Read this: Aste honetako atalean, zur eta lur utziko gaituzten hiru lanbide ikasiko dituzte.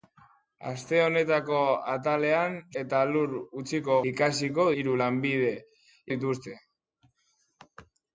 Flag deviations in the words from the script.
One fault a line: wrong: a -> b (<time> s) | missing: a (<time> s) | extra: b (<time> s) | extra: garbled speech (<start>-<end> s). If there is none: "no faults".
missing: zur (2.5 s)
wrong: gaituzten -> ikasiko (4.1 s)
missing: ikasiko (5.5 s)